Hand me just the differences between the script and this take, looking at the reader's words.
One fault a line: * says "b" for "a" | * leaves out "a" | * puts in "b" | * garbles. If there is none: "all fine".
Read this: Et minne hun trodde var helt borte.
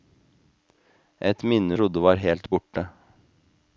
* leaves out "hun"